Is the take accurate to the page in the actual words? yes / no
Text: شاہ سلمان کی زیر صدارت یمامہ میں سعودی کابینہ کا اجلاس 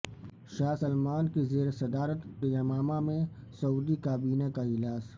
yes